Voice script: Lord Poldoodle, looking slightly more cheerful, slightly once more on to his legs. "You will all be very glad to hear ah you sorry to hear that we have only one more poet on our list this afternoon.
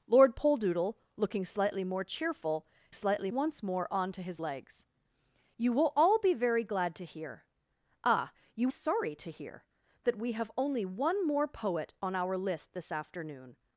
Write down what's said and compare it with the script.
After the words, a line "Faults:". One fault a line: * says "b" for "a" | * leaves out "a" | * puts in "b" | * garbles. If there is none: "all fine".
Lord Poldoodle, looking slightly more cheerful, slightly once more on to his legs. "You will all be very glad to hear ah you sorry to hear that we have only one more poet on our list this afternoon.
Faults:
all fine